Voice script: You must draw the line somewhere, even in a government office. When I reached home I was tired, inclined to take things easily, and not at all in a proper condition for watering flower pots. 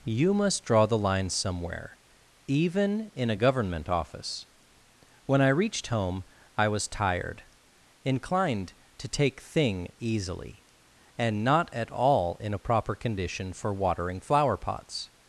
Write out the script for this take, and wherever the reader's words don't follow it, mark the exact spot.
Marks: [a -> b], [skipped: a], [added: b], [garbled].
You must draw the line somewhere, even in a government office. When I reached home I was tired, inclined to take [things -> thing] easily, and not at all in a proper condition for watering flower pots.